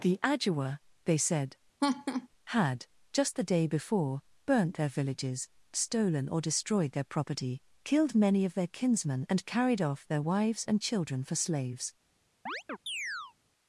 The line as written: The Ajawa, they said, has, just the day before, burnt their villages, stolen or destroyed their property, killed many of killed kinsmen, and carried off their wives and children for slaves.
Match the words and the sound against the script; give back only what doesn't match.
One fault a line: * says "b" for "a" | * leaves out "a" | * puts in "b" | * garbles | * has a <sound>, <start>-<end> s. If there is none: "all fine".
* has a laugh, 1.8-2.3 s
* says "had" for "has"
* says "their" for "killed"
* has a chirp, 12.5-13.3 s